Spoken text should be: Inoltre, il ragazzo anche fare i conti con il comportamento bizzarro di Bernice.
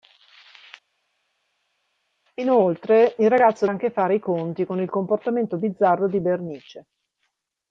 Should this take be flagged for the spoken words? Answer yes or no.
no